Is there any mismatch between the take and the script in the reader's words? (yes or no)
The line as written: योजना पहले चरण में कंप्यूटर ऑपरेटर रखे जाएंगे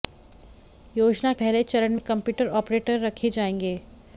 no